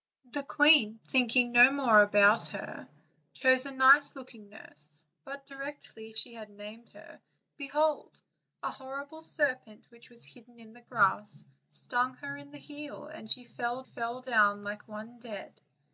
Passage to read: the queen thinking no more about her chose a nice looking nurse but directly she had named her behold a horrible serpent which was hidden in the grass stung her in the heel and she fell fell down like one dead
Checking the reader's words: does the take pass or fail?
pass